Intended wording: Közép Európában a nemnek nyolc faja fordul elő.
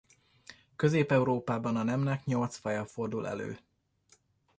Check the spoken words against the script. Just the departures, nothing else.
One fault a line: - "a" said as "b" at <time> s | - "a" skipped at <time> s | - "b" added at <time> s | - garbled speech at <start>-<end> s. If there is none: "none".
none